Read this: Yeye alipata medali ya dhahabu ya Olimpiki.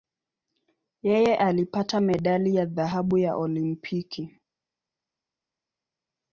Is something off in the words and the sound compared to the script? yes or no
no